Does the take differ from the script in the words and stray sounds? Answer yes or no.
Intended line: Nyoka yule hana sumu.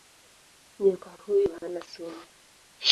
yes